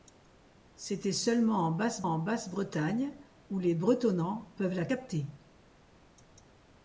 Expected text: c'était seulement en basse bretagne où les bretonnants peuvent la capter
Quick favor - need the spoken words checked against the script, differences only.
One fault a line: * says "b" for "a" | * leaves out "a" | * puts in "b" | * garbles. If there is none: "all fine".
* puts in "en basse"